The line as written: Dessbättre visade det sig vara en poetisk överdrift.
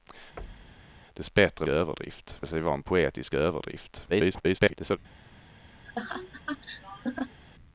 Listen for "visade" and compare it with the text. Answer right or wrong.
wrong